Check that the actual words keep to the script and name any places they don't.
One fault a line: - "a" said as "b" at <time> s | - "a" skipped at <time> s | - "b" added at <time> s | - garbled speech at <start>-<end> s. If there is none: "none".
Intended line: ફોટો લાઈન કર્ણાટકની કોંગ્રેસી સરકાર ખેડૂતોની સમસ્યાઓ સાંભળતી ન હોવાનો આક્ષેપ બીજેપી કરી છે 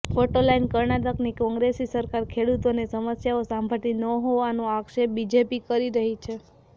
- "રહી" added at 6.0 s